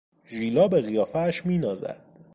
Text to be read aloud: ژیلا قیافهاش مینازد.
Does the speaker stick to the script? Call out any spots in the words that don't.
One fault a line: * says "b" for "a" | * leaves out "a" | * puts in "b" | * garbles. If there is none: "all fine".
* puts in "به"